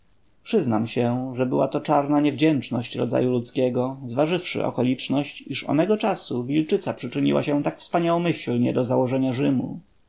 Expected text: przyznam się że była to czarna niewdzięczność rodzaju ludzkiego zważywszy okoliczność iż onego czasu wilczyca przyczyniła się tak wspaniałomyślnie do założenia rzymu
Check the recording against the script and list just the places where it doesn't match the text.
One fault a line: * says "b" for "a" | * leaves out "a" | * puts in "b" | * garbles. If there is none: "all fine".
all fine